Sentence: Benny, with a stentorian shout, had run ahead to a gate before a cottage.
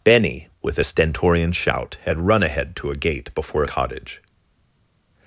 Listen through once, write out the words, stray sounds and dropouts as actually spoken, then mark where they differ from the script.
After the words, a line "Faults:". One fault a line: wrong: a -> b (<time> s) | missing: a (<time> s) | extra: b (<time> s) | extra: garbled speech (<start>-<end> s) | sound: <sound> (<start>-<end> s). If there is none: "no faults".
Benny, with a stentorian shout, had run ahead to a gate before a cottage.
Faults:
no faults